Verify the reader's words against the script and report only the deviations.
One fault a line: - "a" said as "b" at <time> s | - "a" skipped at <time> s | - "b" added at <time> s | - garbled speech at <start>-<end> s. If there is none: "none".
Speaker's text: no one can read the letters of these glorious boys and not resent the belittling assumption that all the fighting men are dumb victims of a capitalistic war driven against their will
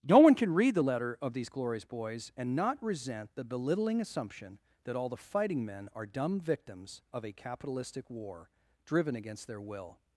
- "letters" said as "letter" at 0.8 s